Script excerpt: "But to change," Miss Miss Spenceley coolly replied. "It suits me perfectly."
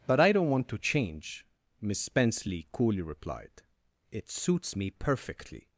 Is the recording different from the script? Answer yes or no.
yes